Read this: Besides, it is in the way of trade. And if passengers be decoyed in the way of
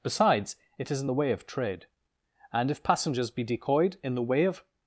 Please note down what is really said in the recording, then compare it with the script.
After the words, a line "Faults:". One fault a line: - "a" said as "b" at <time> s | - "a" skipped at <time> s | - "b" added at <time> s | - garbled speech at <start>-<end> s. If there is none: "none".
Besides, it is in the way of trade. And if passengers be decoyed in the way of
Faults:
none